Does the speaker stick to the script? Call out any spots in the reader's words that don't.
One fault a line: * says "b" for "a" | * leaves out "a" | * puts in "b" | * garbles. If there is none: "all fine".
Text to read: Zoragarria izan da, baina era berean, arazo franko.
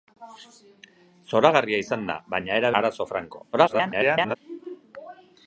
* leaves out "berean"
* garbles